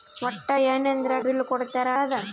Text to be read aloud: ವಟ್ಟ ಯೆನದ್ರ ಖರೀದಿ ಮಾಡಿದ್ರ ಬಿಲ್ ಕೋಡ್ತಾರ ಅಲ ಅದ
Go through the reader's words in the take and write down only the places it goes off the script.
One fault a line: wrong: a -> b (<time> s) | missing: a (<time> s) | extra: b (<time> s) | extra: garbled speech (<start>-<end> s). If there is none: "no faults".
missing: ಖರೀದಿ ಮಾಡಿದ್ರ (1.1 s)
missing: ಅಲ (1.9 s)